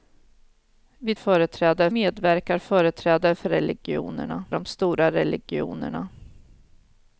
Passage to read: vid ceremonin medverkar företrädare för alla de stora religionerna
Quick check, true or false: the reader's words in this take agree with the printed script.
false